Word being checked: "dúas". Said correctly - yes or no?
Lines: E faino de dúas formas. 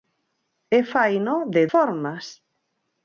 no